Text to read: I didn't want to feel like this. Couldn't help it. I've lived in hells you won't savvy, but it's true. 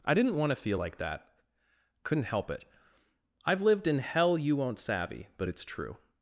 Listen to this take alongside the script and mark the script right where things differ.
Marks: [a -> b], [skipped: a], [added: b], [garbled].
I didn't want to feel like [this. -> that] Couldn't help it. I've lived in [hells -> hell] you won't savvy, but it's true.